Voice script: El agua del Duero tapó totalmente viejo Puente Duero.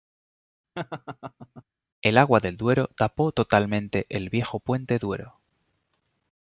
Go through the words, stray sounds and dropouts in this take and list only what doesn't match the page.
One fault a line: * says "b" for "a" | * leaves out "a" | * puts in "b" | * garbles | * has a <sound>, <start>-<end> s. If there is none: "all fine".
* has a laugh, 0.8-1.6 s
* puts in "el"